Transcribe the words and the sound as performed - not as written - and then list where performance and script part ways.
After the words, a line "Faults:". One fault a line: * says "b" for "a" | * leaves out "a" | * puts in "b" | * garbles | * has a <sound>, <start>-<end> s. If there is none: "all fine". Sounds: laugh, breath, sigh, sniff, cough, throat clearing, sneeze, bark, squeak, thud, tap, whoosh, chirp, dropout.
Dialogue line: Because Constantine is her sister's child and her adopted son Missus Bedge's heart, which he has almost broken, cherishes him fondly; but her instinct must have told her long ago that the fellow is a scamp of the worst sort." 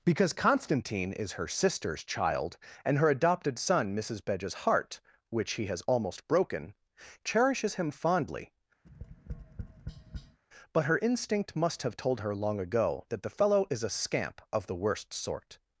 Because Constantine is her sister's child and her adopted son Missus Bedge's heart, which he has almost broken, cherishes him fondly; but her instinct must have told her long ago that the fellow is a scamp of the worst sort."
Faults:
* has a tap, 8.8-10.4 s